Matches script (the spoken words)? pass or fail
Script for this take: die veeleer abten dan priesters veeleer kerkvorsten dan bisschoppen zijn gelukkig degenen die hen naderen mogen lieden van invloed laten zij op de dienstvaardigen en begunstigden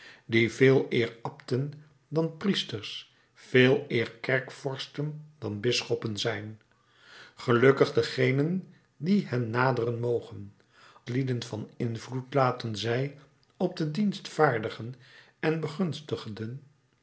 pass